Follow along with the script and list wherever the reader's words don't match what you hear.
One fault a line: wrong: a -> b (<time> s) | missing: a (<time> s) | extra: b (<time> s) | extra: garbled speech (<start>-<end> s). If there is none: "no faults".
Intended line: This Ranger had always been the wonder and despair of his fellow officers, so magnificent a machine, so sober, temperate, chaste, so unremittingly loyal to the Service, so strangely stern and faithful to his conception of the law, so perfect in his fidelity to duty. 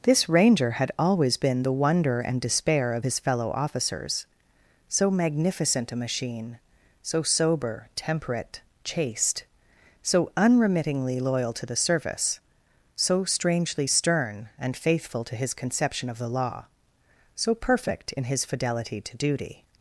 no faults